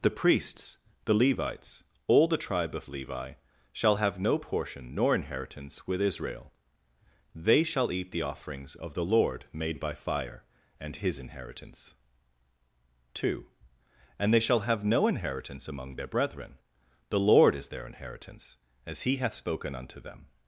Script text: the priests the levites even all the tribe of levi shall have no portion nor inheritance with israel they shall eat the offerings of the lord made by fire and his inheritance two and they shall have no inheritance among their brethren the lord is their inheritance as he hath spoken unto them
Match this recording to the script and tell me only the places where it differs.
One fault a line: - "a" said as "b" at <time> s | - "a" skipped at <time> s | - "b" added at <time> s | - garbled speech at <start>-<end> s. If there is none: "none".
- "even" skipped at 1.8 s